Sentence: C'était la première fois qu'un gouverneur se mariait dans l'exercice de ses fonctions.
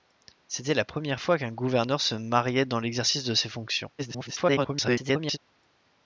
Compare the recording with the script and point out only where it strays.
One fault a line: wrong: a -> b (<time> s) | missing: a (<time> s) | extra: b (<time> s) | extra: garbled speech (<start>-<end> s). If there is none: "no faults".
extra: garbled speech (4.0-5.4 s)